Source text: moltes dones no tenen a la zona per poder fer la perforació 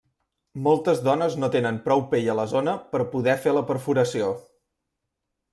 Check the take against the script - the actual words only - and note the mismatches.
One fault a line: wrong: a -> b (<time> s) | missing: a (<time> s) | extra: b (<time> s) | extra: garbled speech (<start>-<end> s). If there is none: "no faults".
extra: prou pell (1.8 s)